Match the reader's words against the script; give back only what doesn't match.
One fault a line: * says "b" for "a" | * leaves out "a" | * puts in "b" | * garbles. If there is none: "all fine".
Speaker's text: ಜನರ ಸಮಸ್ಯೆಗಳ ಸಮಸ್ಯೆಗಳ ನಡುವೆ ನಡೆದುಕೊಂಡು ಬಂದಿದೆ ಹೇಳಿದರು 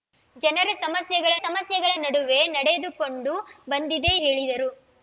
all fine